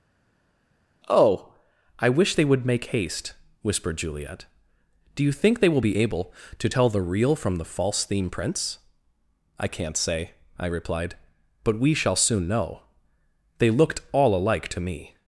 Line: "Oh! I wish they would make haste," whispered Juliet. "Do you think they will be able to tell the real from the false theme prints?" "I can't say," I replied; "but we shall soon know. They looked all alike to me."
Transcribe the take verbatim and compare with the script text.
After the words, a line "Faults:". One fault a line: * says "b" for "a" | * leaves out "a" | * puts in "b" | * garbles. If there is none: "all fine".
"Oh! I wish they would make haste," whispered Juliet. "Do you think they will be able to tell the real from the false theme prints?" "I can't say," I replied; "but we shall soon know. They looked all alike to me."
Faults:
all fine